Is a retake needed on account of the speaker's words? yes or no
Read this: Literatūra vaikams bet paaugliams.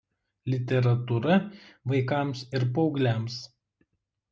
yes